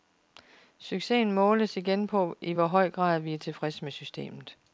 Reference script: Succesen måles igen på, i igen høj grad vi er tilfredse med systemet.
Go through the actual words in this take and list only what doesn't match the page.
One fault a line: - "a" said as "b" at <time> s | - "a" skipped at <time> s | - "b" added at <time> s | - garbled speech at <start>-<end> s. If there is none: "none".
- "igen" said as "hvor" at 2.5 s